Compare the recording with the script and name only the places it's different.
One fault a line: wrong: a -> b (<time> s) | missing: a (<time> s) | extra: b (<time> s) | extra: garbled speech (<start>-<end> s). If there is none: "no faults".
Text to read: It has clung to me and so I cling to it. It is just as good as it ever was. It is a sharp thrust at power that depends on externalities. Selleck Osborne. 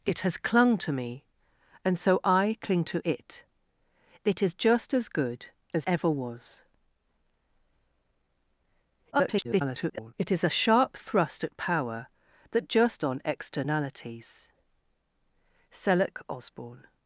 missing: it (5.8 s)
extra: garbled speech (9.1-10.1 s)
wrong: depends -> just (12.6 s)